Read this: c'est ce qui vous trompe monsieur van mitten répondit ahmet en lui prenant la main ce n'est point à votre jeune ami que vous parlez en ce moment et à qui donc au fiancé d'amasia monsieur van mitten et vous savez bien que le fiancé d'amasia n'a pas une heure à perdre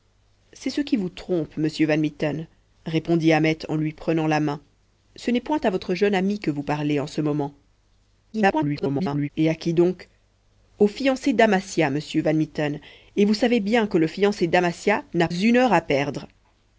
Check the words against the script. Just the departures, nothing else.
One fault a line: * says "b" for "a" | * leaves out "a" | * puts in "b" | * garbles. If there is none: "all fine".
* garbles
* leaves out "pas"